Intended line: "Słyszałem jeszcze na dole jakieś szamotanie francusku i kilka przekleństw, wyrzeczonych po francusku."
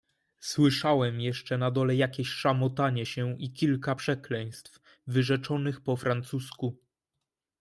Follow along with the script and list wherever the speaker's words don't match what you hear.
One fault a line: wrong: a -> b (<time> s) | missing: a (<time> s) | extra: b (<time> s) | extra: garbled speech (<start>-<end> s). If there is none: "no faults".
wrong: francusku -> się (3.0 s)